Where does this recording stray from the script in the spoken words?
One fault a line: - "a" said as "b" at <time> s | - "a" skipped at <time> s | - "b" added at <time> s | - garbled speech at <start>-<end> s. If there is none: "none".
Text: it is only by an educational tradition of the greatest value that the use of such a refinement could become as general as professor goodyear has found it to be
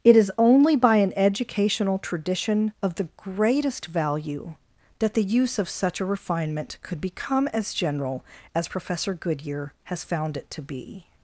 none